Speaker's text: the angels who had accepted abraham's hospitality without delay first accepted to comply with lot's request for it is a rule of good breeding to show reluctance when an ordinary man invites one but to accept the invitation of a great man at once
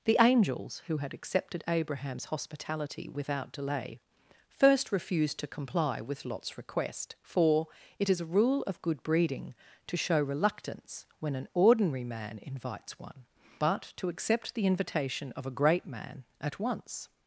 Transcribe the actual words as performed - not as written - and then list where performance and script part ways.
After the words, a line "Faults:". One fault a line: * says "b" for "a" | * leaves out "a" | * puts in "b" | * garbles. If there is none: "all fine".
the angels who had accepted abraham's hospitality without delay first refused to comply with lot's request for it is a rule of good breeding to show reluctance when an ordinary man invites one but to accept the invitation of a great man at once
Faults:
* says "refused" for "accepted"